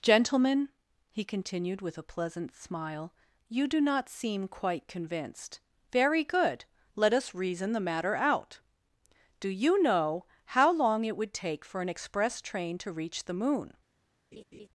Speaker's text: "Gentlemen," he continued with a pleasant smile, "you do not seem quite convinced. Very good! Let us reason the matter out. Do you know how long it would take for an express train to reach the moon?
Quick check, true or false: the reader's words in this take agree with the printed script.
true